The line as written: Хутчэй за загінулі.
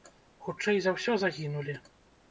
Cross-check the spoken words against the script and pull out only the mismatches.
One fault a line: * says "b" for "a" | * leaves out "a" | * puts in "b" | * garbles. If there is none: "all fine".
* puts in "ўсё"